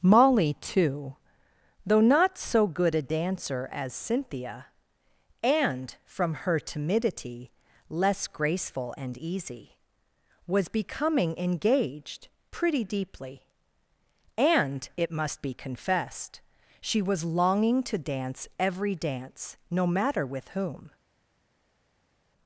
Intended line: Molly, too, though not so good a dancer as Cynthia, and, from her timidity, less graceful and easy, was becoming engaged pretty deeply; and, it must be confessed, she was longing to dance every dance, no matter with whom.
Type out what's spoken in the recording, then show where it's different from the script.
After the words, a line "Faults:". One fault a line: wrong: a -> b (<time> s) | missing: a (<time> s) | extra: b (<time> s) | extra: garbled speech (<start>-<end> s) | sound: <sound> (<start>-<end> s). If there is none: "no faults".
Molly, too, though not so good a dancer as Cynthia, and, from her timidity, less graceful and easy, was becoming engaged pretty deeply; and, it must be confessed, she was longing to dance every dance, no matter with whom.
Faults:
no faults